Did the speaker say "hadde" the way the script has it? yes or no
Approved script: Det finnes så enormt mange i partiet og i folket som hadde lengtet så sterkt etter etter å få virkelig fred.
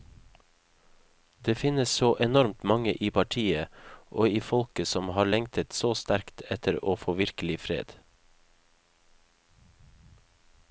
no